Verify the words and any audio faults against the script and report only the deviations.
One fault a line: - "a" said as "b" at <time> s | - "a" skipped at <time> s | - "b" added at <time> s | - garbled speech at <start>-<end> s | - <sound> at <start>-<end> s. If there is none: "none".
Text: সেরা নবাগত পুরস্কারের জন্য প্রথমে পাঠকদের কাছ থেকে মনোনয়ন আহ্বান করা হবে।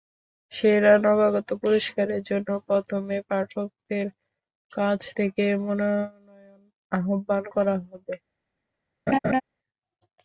- laugh at 9.1-9.4 s